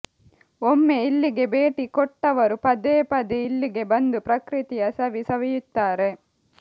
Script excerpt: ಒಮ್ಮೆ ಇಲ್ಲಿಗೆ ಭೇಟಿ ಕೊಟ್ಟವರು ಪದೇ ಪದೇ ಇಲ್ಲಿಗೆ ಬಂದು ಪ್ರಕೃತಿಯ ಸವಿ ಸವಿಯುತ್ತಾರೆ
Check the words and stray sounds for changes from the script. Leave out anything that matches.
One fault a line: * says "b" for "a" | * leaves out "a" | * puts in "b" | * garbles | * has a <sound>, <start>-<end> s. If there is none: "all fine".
all fine